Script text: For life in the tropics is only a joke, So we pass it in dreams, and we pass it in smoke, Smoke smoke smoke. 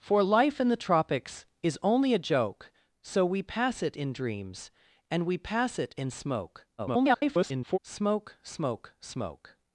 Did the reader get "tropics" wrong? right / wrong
right